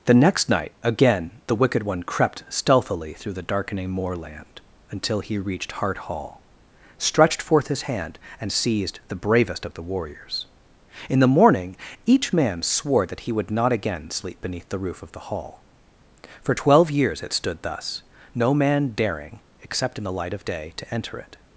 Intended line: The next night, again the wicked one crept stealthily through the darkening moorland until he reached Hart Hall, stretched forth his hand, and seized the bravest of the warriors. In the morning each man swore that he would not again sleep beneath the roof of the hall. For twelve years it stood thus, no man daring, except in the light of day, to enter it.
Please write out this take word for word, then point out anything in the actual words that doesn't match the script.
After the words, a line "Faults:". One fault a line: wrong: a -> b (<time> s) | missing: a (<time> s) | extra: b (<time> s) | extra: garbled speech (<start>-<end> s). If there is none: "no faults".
The next night, again the wicked one crept stealthily through the darkening moorland until he reached Hart Hall, stretched forth his hand, and seized the bravest of the warriors. In the morning each man swore that he would not again sleep beneath the roof of the hall. For twelve years it stood thus, no man daring, except in the light of day, to enter it.
Faults:
no faults